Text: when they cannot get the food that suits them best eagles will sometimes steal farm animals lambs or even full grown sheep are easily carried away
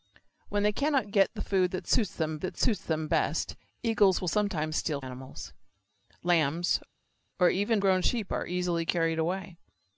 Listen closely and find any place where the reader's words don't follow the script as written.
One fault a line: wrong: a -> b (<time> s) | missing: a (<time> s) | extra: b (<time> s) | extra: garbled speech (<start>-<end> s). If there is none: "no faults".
extra: that suits them (2.4 s)
missing: farm (5.0 s)
missing: full (7.8 s)